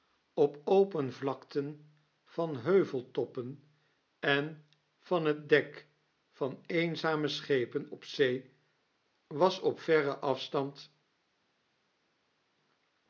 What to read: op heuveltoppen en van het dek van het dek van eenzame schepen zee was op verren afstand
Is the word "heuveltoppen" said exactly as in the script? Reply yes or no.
no